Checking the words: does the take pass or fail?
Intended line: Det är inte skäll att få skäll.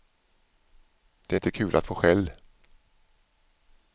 fail